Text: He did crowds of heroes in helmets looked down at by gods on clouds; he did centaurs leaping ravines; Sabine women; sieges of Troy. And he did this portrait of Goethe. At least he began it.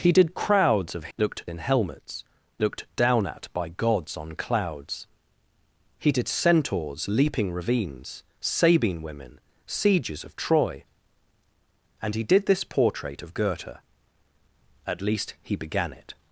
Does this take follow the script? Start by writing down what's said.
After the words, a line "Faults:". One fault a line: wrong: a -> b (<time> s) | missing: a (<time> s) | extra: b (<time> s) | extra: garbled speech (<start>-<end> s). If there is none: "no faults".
He did crowds of looked in helmets looked down at by gods on clouds; he did centaurs leaping ravines; Sabine women; sieges of Troy. And he did this portrait of Goethe. At least he began it.
Faults:
wrong: heroes -> looked (1.2 s)